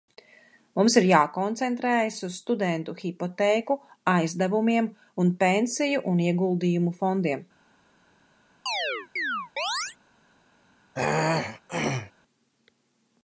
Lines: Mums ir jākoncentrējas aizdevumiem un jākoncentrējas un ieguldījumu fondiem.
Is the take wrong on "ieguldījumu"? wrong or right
right